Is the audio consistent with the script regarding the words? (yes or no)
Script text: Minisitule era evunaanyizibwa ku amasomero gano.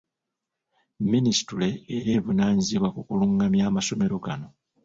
no